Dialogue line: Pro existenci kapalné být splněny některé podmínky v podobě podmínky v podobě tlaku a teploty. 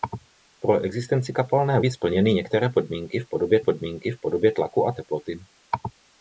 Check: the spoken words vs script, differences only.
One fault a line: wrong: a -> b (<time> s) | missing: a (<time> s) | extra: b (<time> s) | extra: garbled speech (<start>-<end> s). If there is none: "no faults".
no faults